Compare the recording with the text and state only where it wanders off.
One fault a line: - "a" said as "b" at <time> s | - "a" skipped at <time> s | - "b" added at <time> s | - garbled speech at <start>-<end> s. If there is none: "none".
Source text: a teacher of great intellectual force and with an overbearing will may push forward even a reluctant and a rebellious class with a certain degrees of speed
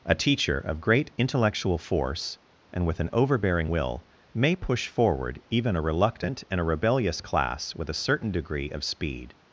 - "degrees" said as "degree" at 8.3 s